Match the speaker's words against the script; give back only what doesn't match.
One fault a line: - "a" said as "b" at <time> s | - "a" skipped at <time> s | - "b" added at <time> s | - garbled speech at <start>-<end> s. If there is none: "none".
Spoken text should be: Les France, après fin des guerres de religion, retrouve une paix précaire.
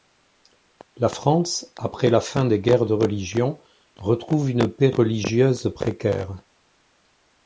- "Les" said as "La" at 1.0 s
- "la" added at 2.1 s
- "religieuse" added at 4.9 s